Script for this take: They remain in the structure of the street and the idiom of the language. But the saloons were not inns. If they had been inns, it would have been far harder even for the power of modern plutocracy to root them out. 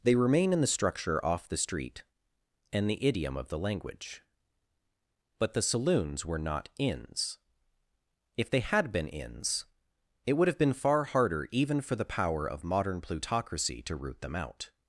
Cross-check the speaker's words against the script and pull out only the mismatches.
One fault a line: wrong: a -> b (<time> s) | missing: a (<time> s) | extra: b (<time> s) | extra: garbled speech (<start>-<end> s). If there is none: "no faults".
wrong: of -> off (1.2 s)